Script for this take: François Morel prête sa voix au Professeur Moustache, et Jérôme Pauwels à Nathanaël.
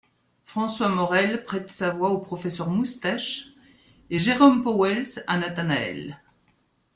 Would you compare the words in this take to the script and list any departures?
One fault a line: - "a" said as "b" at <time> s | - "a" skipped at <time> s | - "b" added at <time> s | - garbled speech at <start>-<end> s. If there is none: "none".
none